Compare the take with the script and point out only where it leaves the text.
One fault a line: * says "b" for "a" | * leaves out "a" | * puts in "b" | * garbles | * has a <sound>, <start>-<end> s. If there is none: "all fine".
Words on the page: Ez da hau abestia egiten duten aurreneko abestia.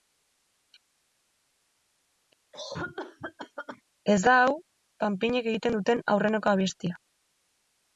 * has a cough, 2.5-3.8 s
* says "panpinek" for "abestia"